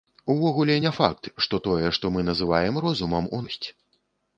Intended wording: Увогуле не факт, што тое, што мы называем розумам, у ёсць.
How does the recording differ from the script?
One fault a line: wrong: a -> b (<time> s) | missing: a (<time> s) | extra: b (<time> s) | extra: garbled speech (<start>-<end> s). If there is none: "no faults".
no faults